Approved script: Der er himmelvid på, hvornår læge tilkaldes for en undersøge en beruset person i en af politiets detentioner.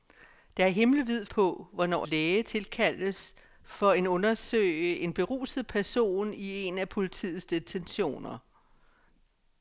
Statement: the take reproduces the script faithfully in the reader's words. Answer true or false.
true